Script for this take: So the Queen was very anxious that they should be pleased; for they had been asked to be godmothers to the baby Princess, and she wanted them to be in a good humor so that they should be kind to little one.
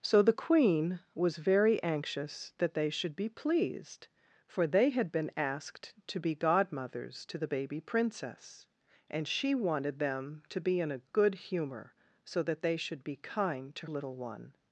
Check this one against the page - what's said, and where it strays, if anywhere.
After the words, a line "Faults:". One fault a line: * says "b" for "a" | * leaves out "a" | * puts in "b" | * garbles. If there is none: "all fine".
So the Queen was very anxious that they should be pleased; for they had been asked to be godmothers to the baby Princess, and she wanted them to be in a good humor so that they should be kind to little one.
Faults:
all fine